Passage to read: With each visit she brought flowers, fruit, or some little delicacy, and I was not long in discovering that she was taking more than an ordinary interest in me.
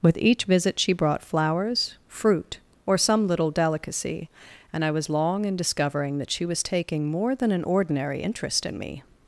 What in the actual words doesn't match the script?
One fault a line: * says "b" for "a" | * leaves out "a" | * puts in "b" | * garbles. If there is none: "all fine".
* leaves out "not"